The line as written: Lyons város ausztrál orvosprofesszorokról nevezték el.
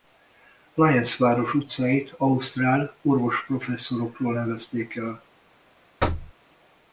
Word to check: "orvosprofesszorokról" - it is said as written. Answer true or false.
true